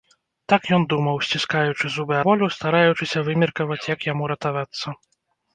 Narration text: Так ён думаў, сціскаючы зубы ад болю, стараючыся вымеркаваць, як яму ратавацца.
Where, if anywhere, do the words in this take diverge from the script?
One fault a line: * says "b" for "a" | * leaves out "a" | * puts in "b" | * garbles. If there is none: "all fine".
* leaves out "ад"